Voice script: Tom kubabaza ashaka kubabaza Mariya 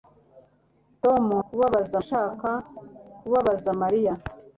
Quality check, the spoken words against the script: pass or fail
pass